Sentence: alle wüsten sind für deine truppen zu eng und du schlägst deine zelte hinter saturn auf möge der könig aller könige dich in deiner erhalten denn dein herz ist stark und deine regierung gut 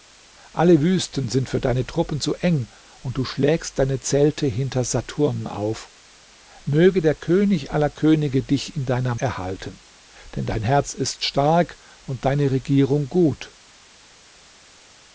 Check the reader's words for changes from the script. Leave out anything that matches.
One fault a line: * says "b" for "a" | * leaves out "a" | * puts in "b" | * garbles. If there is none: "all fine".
all fine